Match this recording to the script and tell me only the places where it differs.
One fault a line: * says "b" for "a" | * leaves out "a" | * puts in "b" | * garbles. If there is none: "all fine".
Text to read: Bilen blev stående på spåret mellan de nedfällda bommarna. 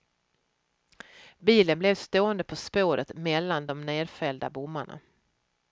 all fine